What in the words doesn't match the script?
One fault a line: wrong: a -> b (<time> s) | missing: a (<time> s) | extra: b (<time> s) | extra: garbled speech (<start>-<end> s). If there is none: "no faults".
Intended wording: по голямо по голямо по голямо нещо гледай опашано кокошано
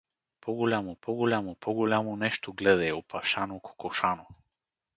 no faults